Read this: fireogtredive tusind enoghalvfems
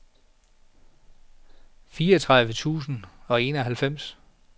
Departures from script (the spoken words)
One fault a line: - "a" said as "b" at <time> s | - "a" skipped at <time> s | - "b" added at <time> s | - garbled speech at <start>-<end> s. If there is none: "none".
- "og" added at 3.3 s